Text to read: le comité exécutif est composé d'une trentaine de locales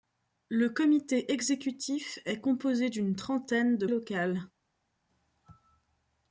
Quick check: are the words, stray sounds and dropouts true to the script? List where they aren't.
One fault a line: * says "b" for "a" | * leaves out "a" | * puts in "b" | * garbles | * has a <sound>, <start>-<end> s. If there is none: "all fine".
all fine